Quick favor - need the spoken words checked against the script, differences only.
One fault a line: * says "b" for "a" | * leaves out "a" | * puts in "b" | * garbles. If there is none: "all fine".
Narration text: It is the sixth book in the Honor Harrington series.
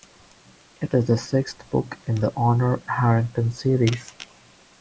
all fine